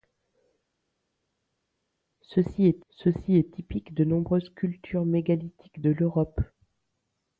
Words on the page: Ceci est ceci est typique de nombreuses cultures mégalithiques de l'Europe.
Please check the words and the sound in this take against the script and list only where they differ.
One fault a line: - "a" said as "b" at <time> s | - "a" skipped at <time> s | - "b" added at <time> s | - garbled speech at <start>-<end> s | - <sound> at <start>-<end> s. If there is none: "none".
none